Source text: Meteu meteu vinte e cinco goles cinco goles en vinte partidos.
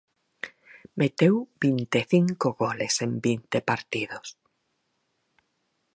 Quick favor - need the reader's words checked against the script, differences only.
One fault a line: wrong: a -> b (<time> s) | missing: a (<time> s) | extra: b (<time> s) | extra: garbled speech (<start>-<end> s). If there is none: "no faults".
missing: meteu (1.4 s)
missing: cinco goles (2.9 s)